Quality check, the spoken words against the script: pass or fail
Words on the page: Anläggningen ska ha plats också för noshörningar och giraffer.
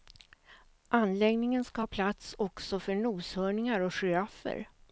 pass